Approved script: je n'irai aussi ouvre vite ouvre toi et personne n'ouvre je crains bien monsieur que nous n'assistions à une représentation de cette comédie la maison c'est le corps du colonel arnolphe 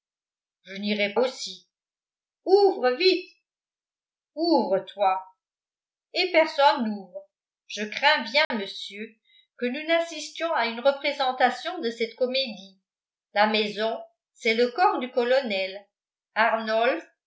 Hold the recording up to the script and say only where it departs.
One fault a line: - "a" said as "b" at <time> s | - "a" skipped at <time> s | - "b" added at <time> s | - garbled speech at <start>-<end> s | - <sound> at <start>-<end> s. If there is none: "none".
- dropout at 8.4-8.5 s